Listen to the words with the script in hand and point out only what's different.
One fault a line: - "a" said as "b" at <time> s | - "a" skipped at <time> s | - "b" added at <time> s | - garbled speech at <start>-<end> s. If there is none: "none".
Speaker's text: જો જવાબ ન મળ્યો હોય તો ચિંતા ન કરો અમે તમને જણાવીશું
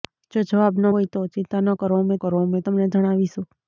- "મળ્યો" skipped at 0.8 s
- "કરો અમે" added at 2.2 s